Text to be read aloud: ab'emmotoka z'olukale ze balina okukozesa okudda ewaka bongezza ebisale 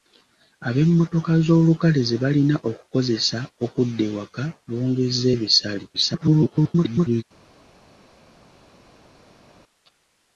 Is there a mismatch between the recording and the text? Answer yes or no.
yes